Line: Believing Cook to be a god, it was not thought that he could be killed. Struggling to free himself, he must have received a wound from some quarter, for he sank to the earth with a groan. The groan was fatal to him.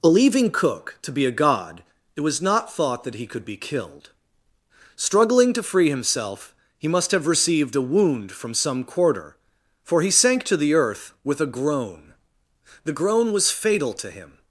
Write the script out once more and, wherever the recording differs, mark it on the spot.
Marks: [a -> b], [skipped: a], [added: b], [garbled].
Believing Cook to be a god, it was not thought that he could be killed. Struggling to free himself, he must have received a wound from some quarter, for he sank to the earth with a groan. The groan was fatal to him.